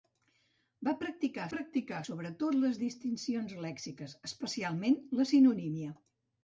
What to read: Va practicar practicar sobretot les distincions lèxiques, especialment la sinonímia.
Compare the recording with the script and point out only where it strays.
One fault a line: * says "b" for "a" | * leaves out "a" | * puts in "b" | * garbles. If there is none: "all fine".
all fine